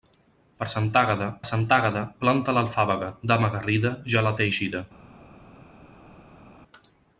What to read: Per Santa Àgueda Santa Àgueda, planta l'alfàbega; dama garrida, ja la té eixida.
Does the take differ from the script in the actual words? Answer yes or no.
no